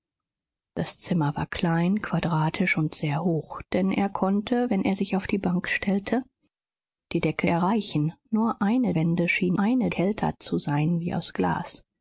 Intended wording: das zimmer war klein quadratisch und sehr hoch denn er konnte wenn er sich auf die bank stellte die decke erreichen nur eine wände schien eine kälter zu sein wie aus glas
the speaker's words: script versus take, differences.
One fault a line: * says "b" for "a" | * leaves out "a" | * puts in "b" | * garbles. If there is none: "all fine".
all fine